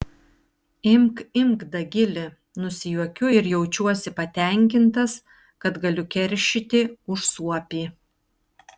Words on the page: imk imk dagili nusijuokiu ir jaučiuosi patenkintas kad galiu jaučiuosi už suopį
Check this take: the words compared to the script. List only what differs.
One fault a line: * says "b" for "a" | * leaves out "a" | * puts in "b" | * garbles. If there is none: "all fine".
* says "keršyti" for "jaučiuosi"